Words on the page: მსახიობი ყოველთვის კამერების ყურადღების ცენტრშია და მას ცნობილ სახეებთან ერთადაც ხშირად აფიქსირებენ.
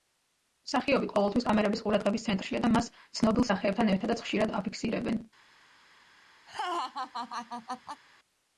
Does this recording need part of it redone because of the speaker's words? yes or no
no